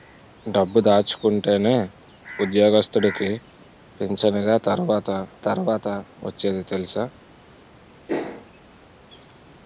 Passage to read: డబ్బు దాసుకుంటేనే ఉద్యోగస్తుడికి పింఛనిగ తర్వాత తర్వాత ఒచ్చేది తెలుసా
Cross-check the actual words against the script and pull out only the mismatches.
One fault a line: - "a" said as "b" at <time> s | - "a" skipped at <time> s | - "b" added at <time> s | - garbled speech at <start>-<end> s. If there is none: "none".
none